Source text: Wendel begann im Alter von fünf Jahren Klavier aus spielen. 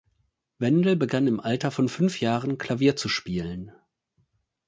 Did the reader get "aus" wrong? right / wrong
wrong